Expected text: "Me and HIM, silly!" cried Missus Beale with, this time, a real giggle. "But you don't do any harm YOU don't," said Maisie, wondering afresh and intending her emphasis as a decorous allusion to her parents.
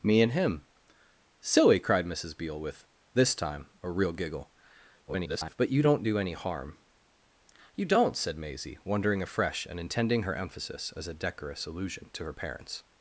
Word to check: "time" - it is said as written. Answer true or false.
true